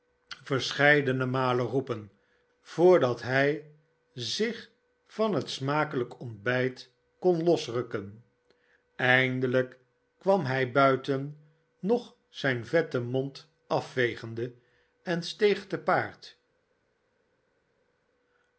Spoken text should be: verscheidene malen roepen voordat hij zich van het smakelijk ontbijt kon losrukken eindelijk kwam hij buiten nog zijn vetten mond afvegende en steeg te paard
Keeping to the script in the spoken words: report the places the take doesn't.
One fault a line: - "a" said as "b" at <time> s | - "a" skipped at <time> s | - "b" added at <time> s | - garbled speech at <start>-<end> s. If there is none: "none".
none